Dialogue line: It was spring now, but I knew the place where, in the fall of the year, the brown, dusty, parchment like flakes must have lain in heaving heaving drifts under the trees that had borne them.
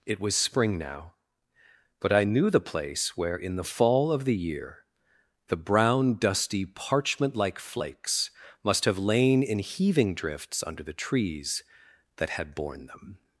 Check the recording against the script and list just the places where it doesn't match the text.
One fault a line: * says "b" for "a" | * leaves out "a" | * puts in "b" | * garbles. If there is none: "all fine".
* leaves out "heaving"